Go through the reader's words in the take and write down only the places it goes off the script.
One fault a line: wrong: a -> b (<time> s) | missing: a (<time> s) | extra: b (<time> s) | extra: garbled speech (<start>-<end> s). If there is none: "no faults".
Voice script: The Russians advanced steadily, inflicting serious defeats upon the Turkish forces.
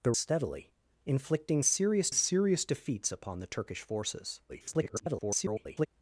missing: Russians advanced (0.1 s)
extra: serious (2.1 s)
extra: garbled speech (4.5-5.9 s)